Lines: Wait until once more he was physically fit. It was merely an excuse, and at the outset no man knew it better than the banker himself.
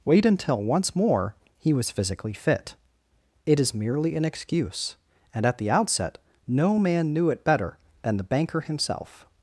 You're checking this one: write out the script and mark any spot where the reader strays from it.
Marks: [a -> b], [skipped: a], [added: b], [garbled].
Wait until once more he was physically fit. It [was -> is] merely an excuse, and at the outset no man knew it better than the banker himself.